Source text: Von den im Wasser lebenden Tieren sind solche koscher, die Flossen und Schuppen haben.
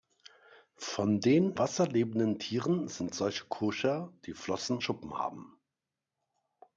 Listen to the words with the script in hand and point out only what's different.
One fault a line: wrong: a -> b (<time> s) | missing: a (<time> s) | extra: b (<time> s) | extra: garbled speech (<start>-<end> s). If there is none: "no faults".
missing: im (1.5 s)
missing: und (4.8 s)